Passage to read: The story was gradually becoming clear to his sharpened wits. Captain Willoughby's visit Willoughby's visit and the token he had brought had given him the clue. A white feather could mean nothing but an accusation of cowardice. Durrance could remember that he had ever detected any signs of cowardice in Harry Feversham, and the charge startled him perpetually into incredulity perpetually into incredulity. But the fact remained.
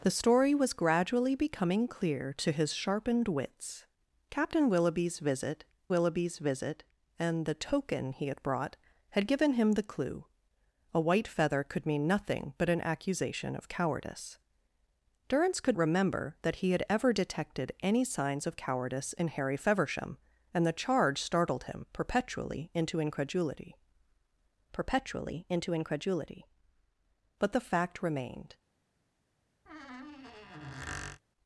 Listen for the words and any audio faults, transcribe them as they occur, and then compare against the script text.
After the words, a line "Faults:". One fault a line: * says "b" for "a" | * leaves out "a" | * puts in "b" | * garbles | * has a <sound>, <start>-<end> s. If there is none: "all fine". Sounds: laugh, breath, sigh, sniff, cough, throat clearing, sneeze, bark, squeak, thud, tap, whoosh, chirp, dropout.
The story was gradually becoming clear to his sharpened wits. Captain Willoughby's visit Willoughby's visit and the token he had brought had given him the clue. A white feather could mean nothing but an accusation of cowardice. Durrance could remember that he had ever detected any signs of cowardice in Harry Feversham, and the charge startled him perpetually into incredulity perpetually into incredulity. But the fact remained.
Faults:
* has a squeak, 29.7-31.2 s